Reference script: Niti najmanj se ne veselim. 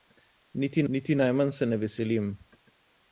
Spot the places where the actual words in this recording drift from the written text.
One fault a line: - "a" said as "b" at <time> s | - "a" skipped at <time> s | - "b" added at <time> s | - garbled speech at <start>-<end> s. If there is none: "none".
- "niti" added at 0.9 s